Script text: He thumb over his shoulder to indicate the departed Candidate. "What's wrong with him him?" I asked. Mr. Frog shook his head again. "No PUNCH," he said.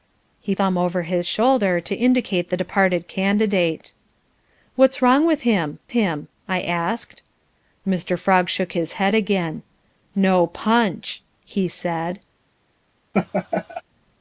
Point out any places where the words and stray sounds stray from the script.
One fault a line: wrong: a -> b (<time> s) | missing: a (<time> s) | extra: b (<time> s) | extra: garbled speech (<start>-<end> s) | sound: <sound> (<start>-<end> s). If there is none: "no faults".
sound: laugh (13.1-13.8 s)